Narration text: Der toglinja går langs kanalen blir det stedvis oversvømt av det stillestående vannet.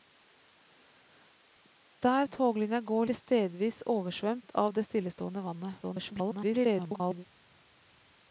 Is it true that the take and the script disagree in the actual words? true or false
true